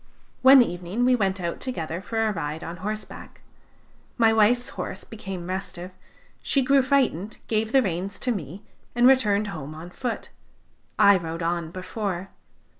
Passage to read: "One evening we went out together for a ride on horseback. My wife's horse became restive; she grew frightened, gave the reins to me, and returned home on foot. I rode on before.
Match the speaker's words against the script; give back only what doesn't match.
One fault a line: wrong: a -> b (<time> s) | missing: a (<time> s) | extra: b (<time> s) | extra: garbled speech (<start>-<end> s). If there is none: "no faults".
no faults